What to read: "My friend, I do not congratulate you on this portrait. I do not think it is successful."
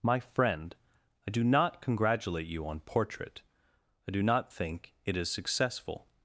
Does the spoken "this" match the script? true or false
false